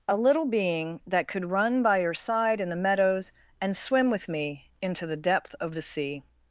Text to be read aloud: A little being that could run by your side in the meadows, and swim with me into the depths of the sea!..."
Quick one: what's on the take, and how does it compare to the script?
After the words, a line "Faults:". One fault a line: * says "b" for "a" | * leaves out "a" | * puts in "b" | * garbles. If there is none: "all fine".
A little being that could run by your side in the meadows, and swim with me into the depth of the sea!..."
Faults:
* says "depth" for "depths"